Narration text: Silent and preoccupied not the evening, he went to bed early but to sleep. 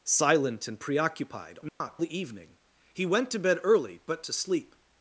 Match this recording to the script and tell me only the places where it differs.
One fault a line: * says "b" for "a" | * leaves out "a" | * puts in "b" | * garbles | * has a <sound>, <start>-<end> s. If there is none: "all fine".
* has a dropout, 1.7-1.8 s